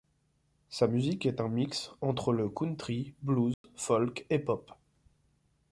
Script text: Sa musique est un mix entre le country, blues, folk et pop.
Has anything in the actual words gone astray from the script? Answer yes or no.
no